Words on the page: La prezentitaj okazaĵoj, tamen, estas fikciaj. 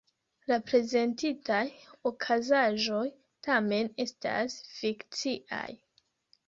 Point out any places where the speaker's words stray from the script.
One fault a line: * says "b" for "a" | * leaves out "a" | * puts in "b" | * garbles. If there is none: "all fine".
all fine